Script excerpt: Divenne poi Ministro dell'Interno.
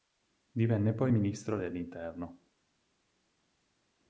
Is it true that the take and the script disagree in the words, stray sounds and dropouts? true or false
false